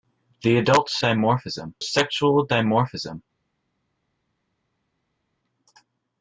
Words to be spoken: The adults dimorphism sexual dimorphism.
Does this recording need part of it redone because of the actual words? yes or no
no